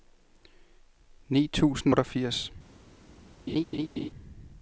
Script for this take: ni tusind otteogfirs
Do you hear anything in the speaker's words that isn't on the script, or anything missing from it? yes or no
no